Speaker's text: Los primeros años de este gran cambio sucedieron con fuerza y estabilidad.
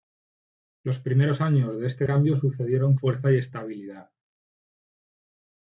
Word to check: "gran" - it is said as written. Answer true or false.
false